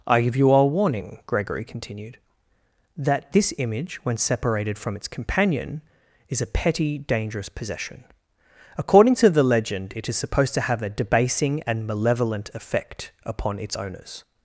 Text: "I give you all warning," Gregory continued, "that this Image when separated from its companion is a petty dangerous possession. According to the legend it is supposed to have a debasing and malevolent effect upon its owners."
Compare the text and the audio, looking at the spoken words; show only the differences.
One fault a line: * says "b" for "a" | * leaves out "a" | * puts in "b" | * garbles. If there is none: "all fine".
all fine